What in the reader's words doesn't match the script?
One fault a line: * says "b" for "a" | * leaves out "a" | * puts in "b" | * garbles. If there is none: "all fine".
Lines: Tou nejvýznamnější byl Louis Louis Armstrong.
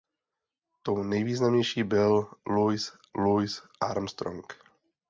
all fine